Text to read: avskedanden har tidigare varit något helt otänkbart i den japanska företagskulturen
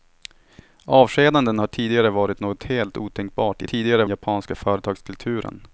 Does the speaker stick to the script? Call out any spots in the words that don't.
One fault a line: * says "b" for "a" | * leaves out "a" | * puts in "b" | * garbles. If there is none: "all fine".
* says "tidigare" for "den"